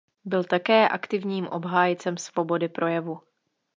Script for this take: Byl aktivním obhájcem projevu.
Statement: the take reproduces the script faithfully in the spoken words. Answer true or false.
false